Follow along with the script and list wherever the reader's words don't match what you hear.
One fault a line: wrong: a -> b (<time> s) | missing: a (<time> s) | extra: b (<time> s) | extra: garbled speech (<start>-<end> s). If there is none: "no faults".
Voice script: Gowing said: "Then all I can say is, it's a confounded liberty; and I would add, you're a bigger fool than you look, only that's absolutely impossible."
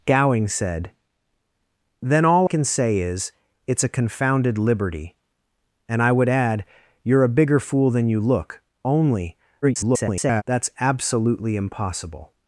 missing: I (2.5 s)
extra: garbled speech (9.6-10.4 s)